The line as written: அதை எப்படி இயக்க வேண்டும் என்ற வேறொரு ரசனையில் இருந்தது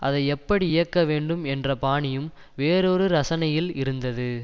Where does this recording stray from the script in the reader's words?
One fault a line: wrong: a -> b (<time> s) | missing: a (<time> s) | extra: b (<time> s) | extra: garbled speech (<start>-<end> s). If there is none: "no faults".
extra: பாணியும் (1.8 s)